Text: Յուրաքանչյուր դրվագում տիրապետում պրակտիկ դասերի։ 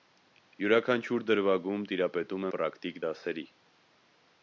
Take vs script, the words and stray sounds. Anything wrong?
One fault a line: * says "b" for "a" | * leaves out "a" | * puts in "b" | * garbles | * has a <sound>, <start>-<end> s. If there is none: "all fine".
all fine